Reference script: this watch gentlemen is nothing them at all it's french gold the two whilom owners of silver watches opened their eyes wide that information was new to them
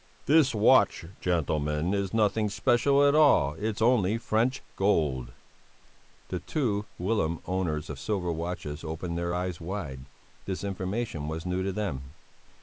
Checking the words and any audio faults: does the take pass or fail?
fail